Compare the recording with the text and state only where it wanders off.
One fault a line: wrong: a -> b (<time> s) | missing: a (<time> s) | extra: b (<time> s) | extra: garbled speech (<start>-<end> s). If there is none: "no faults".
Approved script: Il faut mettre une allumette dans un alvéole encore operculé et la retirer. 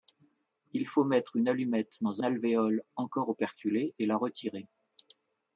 missing: un (2.2 s)